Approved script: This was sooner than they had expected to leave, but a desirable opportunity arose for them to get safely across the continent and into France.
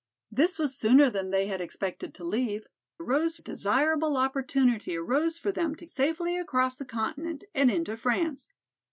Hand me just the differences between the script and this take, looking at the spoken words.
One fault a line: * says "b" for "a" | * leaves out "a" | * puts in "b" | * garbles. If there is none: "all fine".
* says "arose" for "but"
* leaves out "get"